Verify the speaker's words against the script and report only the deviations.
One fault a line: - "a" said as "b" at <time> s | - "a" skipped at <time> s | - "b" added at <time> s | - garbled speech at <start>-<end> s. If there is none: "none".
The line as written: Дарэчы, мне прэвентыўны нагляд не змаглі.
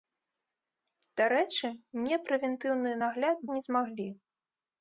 none